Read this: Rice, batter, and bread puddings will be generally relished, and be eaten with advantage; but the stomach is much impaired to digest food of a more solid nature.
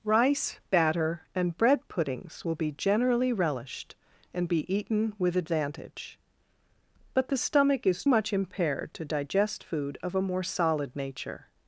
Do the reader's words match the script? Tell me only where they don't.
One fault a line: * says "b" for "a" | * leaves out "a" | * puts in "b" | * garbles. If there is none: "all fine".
all fine